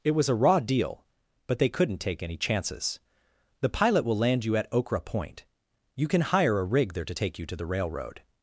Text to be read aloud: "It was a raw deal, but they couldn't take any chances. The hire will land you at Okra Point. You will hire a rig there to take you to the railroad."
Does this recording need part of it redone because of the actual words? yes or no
yes